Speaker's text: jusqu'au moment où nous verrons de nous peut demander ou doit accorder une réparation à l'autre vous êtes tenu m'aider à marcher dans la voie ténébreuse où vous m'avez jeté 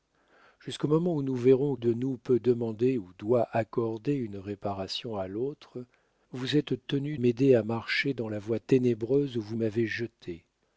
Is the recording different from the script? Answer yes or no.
no